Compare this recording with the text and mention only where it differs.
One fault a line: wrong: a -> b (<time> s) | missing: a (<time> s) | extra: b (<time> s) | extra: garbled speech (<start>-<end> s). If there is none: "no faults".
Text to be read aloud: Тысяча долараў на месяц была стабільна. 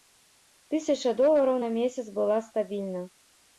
no faults